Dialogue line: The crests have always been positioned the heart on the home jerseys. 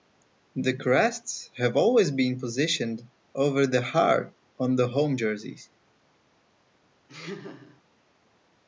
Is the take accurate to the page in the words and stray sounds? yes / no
no